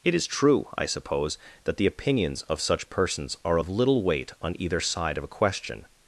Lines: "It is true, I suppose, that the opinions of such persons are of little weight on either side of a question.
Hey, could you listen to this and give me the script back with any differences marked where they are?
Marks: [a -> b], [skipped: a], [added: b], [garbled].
"It is true, I suppose, that the opinions of such persons are of little weight on either side of a question.